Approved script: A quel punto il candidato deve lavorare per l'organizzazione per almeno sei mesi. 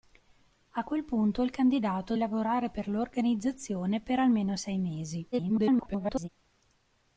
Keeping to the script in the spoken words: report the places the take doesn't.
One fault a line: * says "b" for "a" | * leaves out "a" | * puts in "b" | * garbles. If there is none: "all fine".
* leaves out "deve"
* garbles